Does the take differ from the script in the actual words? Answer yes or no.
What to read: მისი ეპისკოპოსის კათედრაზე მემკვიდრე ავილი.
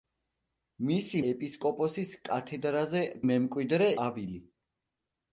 no